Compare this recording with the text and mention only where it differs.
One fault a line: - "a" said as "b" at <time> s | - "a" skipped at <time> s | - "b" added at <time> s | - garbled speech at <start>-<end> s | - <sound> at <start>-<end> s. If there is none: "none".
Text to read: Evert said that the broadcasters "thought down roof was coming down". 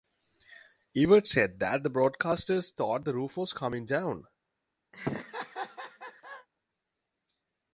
- "down" said as "the" at 3.0 s
- laugh at 4.9-6.5 s